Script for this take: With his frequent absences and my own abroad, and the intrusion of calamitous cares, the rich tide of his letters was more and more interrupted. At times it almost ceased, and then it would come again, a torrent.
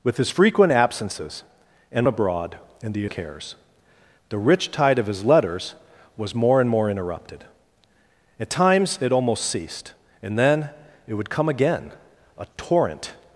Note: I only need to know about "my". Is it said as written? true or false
false